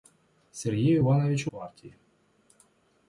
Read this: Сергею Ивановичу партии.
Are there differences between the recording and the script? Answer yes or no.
no